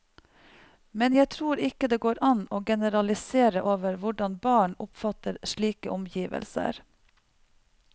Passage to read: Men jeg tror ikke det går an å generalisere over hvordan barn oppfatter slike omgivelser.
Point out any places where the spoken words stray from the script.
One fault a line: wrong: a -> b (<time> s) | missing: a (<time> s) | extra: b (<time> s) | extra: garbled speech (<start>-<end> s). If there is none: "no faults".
no faults